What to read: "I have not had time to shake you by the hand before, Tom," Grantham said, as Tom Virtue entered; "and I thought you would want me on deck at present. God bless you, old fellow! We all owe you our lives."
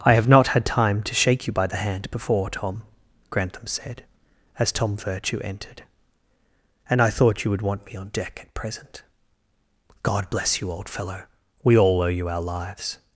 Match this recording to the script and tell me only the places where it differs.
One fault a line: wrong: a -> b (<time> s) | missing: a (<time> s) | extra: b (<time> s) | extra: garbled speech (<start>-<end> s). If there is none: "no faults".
no faults